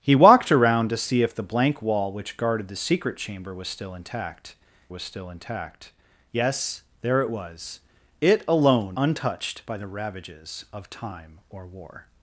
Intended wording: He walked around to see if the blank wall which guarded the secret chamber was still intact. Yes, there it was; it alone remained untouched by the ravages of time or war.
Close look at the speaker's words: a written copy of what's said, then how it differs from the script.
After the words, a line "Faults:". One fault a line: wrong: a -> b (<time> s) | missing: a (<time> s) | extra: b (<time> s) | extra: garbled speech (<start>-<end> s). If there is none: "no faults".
He walked around to see if the blank wall which guarded the secret chamber was still intact was still intact. Yes, there it was; it alone untouched by the ravages of time or war.
Faults:
extra: was still intact (4.9 s)
missing: remained (9.0 s)